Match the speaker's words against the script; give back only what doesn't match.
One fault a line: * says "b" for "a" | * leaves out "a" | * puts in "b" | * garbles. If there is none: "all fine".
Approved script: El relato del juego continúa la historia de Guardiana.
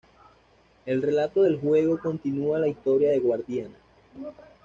all fine